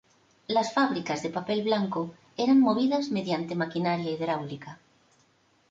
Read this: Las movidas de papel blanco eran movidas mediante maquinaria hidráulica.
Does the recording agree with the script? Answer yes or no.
no